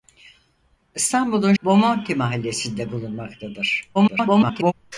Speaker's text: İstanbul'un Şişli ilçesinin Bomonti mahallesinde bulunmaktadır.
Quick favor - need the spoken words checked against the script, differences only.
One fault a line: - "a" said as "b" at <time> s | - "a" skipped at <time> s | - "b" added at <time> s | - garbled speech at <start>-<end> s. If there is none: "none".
- "Şişli ilçesinin" skipped at 1.5 s
- garbled speech at 3.9-4.7 s